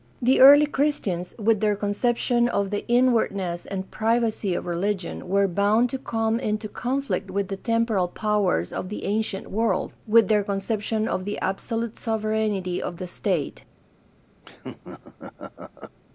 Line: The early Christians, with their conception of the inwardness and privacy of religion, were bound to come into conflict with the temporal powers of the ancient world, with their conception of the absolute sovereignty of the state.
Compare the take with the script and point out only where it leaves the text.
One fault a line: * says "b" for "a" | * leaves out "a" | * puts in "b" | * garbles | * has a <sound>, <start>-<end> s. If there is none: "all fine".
* has a laugh, 14.4-16.0 s